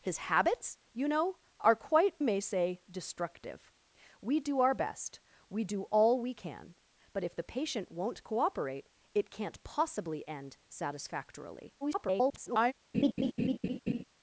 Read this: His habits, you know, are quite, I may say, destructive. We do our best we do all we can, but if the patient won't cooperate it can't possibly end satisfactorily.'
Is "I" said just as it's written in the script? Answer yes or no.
no